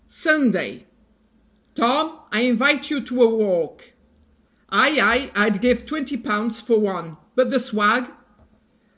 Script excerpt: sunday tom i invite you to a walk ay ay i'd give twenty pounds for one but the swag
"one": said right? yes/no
yes